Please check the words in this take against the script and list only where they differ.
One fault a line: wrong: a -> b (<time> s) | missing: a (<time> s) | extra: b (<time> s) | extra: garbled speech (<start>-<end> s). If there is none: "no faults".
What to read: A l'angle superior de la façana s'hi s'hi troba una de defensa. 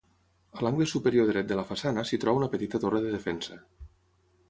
extra: dret (1.3 s)
missing: s'hi (2.2 s)
extra: petita torre (2.6 s)